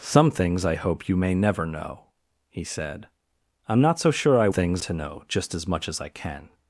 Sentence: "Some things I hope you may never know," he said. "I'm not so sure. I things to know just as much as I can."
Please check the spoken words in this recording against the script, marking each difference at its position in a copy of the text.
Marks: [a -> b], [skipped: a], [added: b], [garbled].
"Some things I hope you may never know," he said. "I'm not so sure. I things to know just as much as I can."